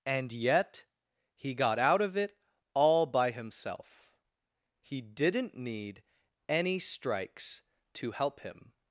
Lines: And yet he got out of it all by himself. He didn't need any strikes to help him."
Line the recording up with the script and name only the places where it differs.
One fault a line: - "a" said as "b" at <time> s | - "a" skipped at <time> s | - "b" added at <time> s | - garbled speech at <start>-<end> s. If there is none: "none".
none